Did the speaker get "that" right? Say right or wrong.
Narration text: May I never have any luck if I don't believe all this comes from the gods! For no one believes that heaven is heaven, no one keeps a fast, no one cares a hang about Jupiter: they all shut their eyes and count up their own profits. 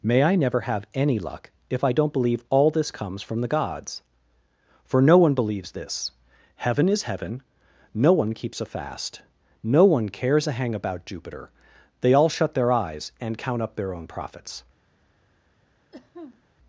wrong